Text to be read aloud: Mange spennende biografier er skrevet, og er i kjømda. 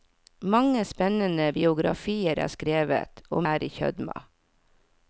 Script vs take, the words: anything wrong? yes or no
no